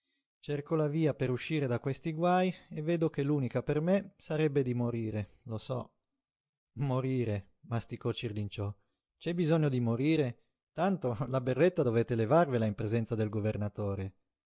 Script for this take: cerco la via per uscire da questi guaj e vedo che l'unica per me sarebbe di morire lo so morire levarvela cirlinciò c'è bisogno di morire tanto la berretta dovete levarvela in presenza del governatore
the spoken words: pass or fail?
fail